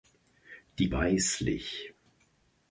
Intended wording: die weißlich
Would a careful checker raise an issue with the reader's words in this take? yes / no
no